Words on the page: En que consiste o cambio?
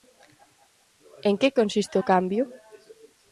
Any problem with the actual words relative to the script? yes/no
no